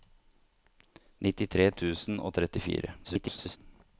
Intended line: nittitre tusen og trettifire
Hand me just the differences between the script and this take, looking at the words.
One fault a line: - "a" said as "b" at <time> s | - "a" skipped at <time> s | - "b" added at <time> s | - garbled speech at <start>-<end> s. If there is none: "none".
- garbled speech at 3.0-3.6 s